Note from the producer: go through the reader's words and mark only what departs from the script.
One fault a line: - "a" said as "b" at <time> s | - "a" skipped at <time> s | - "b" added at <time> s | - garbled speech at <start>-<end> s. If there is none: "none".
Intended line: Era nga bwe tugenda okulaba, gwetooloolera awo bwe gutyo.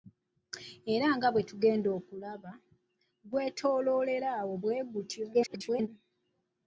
- garbled speech at 5.3-5.9 s